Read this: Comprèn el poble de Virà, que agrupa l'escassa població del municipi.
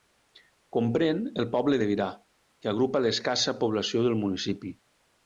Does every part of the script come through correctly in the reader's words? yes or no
yes